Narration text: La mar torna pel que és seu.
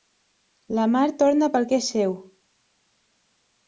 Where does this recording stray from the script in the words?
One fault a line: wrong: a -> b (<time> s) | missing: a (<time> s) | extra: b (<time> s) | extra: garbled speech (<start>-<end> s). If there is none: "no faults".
no faults